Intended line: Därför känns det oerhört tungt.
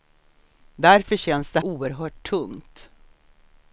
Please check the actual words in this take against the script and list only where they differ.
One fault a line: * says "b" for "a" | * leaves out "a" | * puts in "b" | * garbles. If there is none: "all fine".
all fine